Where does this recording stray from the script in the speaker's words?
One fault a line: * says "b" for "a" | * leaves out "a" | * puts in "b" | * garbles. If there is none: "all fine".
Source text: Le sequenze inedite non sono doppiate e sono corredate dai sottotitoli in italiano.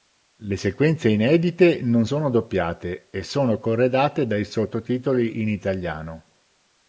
all fine